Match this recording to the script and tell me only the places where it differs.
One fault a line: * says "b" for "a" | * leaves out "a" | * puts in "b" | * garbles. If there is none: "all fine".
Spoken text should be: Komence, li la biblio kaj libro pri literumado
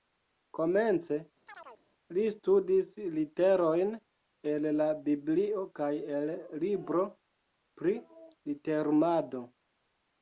* puts in "studis literojn el"
* puts in "el"